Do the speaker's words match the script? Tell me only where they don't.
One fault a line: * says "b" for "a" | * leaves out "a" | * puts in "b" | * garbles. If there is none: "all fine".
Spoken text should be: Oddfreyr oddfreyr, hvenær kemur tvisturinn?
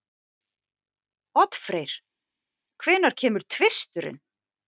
* leaves out "oddfreyr"